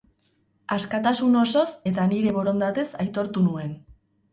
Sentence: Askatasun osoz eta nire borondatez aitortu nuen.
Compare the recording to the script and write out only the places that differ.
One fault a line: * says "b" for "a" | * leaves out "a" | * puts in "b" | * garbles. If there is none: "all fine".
all fine